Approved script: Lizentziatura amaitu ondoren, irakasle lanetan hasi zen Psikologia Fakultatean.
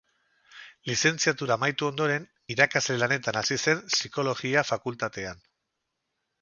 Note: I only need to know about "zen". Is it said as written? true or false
true